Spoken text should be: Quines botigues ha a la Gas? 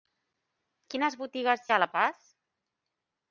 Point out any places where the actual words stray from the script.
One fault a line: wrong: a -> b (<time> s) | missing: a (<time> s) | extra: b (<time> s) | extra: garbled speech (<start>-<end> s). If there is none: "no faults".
no faults